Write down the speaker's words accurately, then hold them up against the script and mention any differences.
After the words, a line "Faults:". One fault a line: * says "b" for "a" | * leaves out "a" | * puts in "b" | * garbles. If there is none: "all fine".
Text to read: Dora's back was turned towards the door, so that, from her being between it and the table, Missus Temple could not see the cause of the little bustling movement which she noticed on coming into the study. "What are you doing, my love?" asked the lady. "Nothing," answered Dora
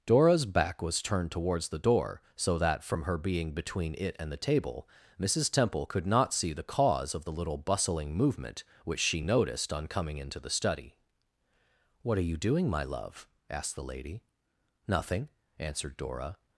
Dora's back was turned towards the door, so that, from her being between it and the table, Missus Temple could not see the cause of the little bustling movement which she noticed on coming into the study. "What are you doing, my love?" asked the lady. "Nothing," answered Dora
Faults:
all fine